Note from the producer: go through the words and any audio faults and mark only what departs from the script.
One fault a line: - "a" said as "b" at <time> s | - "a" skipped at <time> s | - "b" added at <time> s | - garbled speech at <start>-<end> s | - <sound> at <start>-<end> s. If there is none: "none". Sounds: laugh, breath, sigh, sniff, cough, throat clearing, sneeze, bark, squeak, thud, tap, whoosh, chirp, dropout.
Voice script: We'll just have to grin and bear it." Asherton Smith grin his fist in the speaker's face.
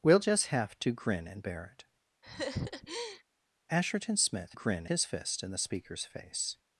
- laugh at 2.2-3.2 s